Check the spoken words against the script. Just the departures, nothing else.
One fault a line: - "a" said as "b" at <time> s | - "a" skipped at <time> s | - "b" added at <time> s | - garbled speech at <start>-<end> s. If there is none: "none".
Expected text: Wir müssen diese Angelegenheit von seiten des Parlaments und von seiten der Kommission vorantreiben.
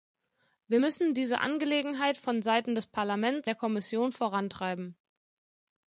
- "und von seiten" skipped at 3.5 s